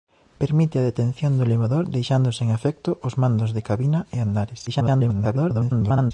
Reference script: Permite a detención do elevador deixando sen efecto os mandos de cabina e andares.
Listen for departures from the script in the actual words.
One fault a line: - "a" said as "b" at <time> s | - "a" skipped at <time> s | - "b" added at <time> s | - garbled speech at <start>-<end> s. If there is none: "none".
- garbled speech at 4.7-6.1 s